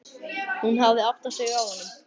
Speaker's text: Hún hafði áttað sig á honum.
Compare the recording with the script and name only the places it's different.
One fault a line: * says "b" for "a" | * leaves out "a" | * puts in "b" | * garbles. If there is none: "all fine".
all fine